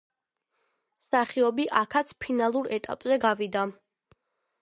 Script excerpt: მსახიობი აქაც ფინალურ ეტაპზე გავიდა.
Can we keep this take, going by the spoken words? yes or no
yes